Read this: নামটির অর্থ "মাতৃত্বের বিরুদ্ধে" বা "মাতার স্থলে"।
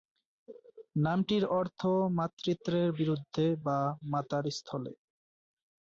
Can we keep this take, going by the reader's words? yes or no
yes